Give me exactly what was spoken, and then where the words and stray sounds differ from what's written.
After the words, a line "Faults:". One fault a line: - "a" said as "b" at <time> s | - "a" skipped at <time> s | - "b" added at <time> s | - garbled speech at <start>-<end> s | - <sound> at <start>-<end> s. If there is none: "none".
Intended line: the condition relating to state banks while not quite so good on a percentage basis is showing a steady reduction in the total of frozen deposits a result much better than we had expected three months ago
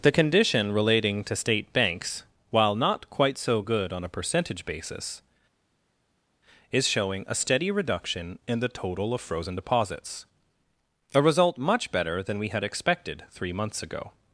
the condition relating to state banks while not quite so good on a percentage basis is showing a steady reduction in the total of frozen deposits a result much better than we had expected three months ago
Faults:
none